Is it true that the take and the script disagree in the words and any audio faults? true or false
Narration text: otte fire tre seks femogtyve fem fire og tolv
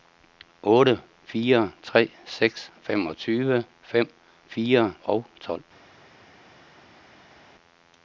false